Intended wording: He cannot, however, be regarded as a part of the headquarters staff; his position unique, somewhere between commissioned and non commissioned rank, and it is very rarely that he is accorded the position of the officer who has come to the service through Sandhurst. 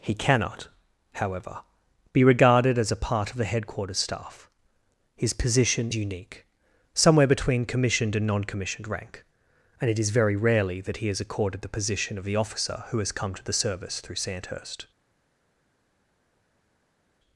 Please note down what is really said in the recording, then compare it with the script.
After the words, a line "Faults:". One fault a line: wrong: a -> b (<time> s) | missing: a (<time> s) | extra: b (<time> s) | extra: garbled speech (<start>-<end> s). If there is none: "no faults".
He cannot, however, be regarded as a part of the headquarters staff; his position unique, somewhere between commissioned and non commissioned rank, and it is very rarely that he is accorded the position of the officer who has come to the service through Sandhurst.
Faults:
no faults